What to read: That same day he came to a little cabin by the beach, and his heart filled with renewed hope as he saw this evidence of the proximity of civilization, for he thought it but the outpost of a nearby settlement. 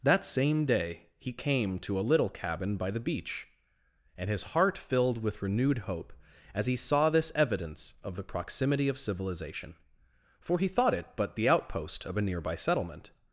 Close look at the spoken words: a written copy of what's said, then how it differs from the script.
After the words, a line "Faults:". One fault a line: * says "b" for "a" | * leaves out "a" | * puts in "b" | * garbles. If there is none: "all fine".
That same day he came to a little cabin by the beach, and his heart filled with renewed hope as he saw this evidence of the proximity of civilization, for he thought it but the outpost of a nearby settlement.
Faults:
all fine